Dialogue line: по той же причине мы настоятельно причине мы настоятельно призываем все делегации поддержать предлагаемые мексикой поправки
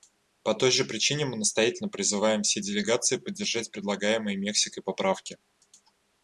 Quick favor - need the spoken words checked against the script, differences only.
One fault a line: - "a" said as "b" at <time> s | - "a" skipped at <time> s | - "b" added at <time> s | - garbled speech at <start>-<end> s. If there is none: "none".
- "причине мы настоятельно" skipped at 1.9 s